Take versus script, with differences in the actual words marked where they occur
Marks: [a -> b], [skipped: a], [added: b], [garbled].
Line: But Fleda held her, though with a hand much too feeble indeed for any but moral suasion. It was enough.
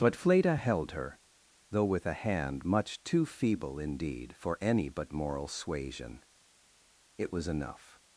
But Fleda held her, though with a hand much too feeble indeed for any but moral suasion. It was enough.